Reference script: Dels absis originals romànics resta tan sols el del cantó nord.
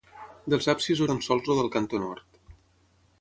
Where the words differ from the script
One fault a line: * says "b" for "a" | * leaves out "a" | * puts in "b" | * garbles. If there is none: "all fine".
* leaves out "originals romànics resta"